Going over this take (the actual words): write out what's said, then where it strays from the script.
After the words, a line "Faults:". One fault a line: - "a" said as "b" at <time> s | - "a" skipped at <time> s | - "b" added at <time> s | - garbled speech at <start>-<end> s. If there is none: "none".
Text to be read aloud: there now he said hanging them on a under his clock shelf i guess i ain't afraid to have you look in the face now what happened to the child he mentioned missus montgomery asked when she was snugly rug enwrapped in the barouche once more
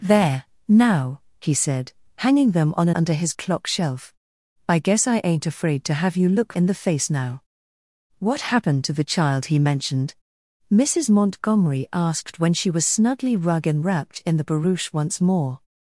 there now he said hanging them on a under his clock shelf i guess i ain't afraid to have you look in the face now what happened to the child he mentioned missus montgomery asked when she was snugly rug enwrapped in the barouche once more
Faults:
none